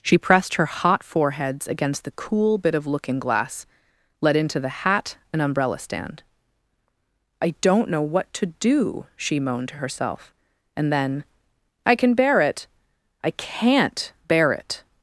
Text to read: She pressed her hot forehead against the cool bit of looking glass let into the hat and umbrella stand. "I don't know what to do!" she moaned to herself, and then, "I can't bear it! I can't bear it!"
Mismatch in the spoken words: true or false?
true